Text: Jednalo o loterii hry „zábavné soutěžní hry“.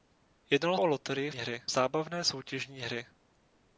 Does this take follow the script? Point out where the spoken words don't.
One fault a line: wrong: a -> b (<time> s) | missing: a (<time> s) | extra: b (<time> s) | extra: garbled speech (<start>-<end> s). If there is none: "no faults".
no faults